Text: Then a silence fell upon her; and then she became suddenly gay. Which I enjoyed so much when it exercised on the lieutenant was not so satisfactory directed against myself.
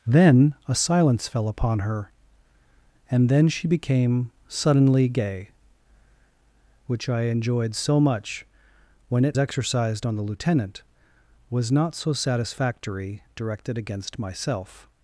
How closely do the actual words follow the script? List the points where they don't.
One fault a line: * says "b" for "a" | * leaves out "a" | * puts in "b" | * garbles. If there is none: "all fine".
all fine